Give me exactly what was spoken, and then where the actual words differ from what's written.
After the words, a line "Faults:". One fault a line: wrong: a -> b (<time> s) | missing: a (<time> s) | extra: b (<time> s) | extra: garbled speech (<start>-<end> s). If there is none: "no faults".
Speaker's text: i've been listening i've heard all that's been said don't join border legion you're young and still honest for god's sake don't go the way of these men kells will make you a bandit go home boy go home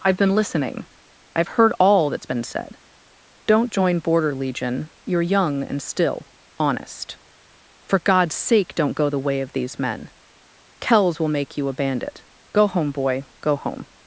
i've been listening i've heard all that's been said don't join border legion you're young and still honest for god's sake don't go the way of these men kells will make you a bandit go home boy go home
Faults:
no faults